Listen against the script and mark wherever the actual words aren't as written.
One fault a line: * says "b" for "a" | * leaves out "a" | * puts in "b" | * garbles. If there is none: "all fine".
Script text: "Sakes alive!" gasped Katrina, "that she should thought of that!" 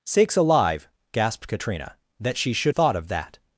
all fine